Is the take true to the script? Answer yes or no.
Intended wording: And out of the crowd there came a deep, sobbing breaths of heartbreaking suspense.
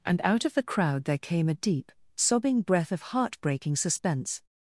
no